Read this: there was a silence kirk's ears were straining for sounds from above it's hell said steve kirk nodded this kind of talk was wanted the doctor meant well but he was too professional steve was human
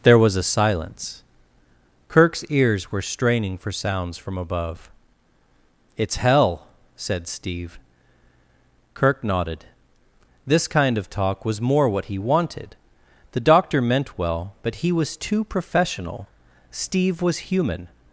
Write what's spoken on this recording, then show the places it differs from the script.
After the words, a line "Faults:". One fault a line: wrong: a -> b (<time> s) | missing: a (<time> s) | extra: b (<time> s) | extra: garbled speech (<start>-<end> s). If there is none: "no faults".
there was a silence kirk's ears were straining for sounds from above it's hell said steve kirk nodded this kind of talk was more what he wanted the doctor meant well but he was too professional steve was human
Faults:
extra: more what he (11.6 s)